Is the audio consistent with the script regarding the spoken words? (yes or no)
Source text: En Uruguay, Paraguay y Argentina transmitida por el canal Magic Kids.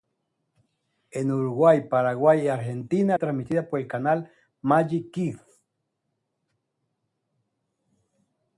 yes